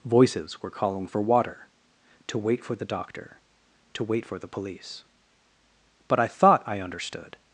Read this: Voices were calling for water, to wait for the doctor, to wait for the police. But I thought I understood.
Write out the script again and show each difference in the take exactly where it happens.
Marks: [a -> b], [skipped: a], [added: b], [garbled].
Voices were calling for water, to wait for the doctor, to wait for the police. But I thought I understood.